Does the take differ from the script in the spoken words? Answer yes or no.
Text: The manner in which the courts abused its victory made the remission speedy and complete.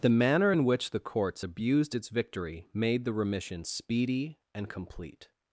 no